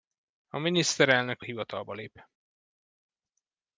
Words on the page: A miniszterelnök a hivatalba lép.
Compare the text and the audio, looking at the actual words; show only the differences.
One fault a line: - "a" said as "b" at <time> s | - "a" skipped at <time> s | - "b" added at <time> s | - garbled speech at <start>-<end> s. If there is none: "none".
none